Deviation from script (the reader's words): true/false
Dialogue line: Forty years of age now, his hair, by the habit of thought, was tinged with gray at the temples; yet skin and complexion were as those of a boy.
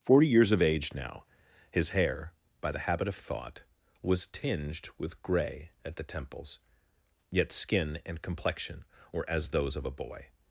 false